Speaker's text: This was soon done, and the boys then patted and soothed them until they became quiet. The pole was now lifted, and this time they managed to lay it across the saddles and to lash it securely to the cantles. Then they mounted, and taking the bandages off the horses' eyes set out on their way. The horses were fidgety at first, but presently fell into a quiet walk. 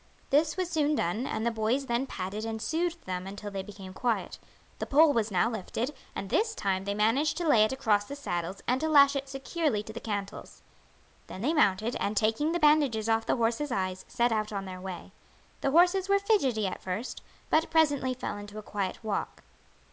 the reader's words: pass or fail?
pass